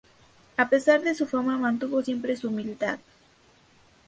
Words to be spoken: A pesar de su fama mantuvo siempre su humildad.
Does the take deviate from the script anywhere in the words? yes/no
no